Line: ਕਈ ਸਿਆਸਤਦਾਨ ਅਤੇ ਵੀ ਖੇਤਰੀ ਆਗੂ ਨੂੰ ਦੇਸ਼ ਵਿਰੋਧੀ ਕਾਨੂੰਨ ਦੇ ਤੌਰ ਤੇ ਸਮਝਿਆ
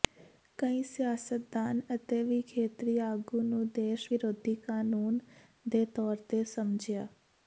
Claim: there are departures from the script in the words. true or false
false